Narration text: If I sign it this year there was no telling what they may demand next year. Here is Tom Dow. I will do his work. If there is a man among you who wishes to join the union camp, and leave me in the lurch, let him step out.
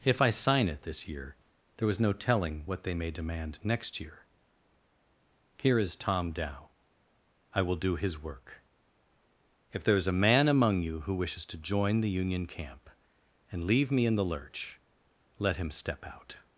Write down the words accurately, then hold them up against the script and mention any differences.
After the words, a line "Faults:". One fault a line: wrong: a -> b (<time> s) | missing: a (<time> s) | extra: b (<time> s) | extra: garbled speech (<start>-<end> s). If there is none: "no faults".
If I sign it this year there was no telling what they may demand next year. Here is Tom Dow. I will do his work. If there is a man among you who wishes to join the union camp, and leave me in the lurch, let him step out.
Faults:
no faults